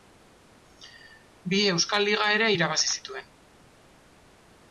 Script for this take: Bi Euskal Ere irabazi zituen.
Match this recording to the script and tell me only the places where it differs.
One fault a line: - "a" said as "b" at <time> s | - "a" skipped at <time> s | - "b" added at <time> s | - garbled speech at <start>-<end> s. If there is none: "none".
- "Liga" added at 2.1 s